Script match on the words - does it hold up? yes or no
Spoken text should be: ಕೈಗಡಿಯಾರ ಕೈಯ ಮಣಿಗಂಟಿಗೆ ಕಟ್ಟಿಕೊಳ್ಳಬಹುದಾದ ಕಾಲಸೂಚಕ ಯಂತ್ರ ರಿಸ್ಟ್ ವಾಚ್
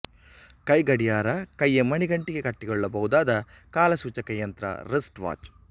yes